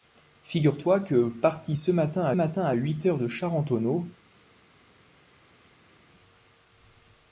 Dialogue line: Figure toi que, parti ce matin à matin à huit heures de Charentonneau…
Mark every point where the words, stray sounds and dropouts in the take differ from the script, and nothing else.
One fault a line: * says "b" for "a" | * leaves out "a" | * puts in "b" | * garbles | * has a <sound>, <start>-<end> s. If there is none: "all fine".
all fine